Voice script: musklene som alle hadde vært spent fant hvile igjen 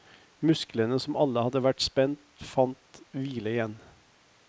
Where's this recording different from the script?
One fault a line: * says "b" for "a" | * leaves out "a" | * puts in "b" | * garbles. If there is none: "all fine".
all fine